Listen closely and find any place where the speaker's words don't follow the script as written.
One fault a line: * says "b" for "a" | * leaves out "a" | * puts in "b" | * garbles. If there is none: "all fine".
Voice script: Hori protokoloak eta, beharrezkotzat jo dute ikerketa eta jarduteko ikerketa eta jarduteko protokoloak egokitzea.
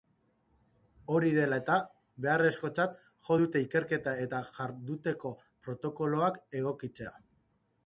* says "dela" for "protokoloak"
* leaves out "ikerketa eta jarduteko"